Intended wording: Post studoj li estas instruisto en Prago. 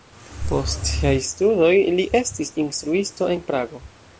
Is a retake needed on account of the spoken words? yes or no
yes